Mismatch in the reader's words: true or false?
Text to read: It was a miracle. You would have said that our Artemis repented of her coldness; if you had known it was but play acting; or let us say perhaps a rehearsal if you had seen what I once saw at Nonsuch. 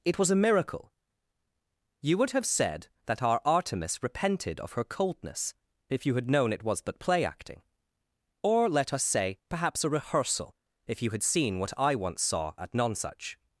false